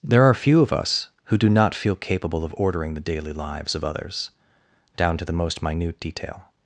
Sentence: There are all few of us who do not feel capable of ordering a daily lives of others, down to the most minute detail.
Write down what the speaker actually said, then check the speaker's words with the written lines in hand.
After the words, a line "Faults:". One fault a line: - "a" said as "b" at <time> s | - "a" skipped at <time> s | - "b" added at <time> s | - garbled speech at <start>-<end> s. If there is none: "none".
There are few of us who do not feel capable of ordering the daily lives of others, down to the most minute detail.
Faults:
- "all" skipped at 0.3 s
- "a" said as "the" at 3.0 s